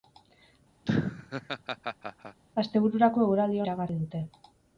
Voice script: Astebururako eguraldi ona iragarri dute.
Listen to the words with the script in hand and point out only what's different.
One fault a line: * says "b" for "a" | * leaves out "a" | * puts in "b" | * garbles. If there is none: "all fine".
* leaves out "ona"